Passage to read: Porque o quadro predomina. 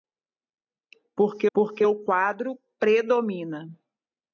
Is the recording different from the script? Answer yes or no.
yes